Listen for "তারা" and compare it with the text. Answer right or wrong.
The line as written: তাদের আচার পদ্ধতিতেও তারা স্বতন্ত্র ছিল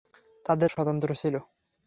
wrong